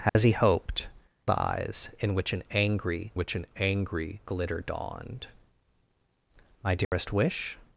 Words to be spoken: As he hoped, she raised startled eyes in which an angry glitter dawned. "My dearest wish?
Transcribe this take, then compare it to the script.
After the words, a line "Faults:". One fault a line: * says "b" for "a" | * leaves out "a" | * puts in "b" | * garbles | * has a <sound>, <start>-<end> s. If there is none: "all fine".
As he hoped, eyes in which an angry which an angry glitter dawned. "My dearest wish?
Faults:
* has a dropout, 0.1-0.2 s
* says "eyes in which an angry" for "she raised startled eyes in"
* has a dropout, 6.8-6.9 s